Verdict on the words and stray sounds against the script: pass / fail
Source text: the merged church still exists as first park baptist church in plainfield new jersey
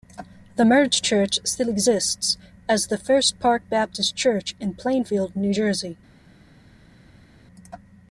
fail